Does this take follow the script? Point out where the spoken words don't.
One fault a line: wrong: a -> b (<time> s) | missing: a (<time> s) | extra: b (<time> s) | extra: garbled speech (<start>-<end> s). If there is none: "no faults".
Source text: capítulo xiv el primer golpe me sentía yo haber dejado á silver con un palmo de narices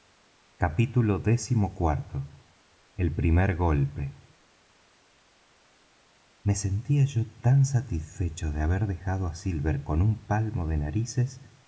extra: tan satisfecho de (7.4 s)